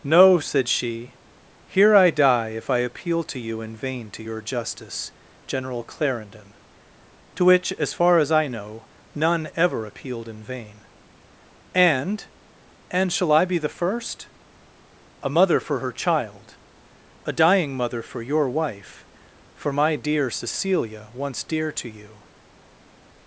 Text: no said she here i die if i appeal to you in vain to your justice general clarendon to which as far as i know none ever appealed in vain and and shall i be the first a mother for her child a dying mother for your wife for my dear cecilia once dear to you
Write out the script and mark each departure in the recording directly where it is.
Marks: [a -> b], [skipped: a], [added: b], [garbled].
no said she here i die if i appeal to you in vain to your justice general clarendon to which as far as i know none ever appealed in vain and and shall i be the first a mother for her child a dying mother for your wife for my dear cecilia once dear to you